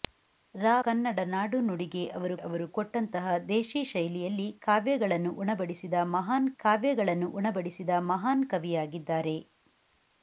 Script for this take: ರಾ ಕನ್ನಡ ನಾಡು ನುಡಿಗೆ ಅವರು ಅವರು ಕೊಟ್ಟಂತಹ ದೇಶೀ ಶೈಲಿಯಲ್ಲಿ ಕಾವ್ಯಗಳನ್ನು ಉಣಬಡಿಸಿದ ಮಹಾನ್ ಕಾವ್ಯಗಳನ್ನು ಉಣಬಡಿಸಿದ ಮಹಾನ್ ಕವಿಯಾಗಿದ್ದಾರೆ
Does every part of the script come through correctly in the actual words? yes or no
yes